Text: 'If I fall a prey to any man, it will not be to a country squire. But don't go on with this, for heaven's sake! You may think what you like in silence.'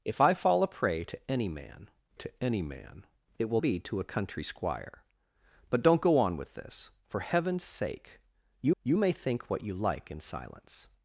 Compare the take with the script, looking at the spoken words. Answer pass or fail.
fail